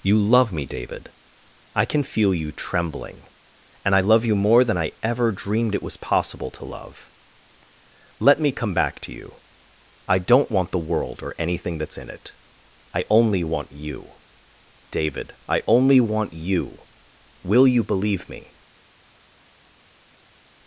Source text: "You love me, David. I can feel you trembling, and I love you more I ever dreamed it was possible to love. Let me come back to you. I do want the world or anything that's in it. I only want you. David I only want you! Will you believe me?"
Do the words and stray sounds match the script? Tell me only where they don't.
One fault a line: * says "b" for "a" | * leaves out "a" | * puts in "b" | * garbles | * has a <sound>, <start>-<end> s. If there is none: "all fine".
* puts in "than"
* says "don't" for "do"